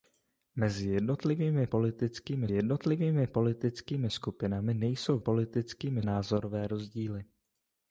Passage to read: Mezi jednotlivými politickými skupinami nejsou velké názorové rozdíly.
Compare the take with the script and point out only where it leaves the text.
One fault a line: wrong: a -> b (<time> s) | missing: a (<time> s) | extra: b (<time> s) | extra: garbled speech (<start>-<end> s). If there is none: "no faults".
extra: jednotlivými politickými (2.5 s)
wrong: velké -> politickými (5.2 s)